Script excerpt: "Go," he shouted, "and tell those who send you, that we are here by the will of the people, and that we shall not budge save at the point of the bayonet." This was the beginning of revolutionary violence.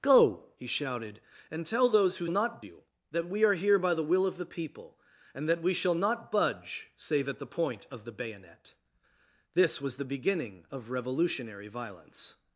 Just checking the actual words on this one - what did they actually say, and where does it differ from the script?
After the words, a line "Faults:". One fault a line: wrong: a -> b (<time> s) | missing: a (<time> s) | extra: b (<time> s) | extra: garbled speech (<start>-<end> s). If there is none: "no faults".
"Go," he shouted, "and tell those who not you, that we are here by the will of the people, and that we shall not budge save at the point of the bayonet." This was the beginning of revolutionary violence.
Faults:
wrong: send -> not (2.3 s)